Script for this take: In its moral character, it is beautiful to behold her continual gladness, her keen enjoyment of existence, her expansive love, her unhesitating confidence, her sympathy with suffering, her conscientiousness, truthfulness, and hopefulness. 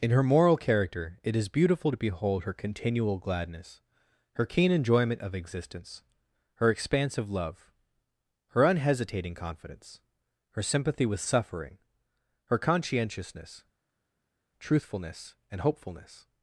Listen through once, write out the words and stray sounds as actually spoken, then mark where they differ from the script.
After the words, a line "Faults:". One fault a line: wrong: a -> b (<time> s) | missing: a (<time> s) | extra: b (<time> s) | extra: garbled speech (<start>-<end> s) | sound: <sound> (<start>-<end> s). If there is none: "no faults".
In her moral character, it is beautiful to behold her continual gladness, her keen enjoyment of existence, her expansive love, her unhesitating confidence, her sympathy with suffering, her conscientiousness, truthfulness, and hopefulness.
Faults:
wrong: its -> her (0.1 s)